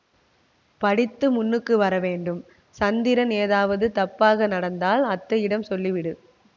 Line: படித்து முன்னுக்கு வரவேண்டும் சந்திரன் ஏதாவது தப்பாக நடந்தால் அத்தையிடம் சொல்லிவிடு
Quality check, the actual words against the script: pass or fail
pass